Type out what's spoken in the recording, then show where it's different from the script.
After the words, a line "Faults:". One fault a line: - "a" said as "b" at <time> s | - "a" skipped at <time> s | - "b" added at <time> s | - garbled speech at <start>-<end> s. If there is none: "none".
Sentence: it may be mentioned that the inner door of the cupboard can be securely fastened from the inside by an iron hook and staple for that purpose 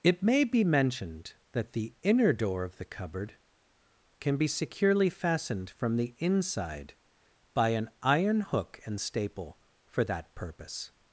it may be mentioned that the inner door of the cupboard can be securely fastened from the inside by an iron hook and staple for that purpose
Faults:
none